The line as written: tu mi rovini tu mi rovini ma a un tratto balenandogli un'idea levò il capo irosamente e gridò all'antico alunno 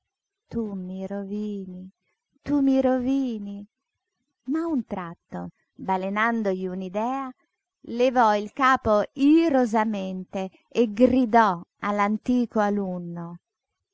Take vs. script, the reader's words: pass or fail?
pass